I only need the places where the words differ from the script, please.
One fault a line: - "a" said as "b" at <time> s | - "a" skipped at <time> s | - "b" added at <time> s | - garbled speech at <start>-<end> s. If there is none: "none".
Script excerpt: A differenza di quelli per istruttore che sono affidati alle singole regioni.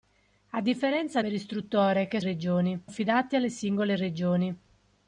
- "di quelli" skipped at 1.2 s
- "sono" said as "regioni" at 2.2 s